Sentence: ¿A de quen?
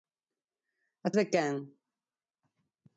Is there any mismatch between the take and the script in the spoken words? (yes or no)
no